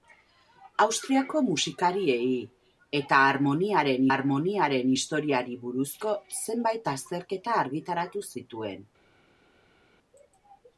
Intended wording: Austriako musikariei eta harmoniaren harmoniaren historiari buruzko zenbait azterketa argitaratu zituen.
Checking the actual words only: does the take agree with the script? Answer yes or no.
yes